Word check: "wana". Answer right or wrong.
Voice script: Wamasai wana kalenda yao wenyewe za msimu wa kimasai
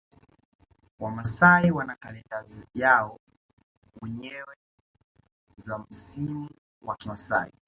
right